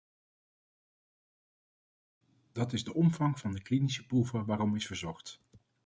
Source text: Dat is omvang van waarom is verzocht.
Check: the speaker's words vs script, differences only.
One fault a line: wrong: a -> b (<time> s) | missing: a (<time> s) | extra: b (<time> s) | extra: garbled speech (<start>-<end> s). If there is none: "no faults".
extra: de (2.8 s)
extra: de klinische proeven (3.5 s)